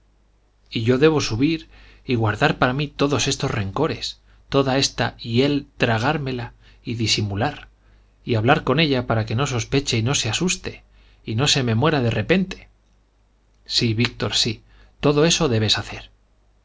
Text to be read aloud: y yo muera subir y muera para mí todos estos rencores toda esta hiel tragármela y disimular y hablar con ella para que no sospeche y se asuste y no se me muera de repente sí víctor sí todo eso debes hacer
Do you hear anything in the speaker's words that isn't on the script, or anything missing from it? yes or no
yes